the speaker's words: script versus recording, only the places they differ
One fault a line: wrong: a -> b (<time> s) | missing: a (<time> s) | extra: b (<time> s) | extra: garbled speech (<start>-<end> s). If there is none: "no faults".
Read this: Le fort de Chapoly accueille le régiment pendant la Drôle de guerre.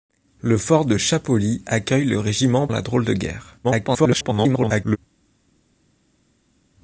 missing: pendant (2.7 s)
extra: garbled speech (3.6-5.0 s)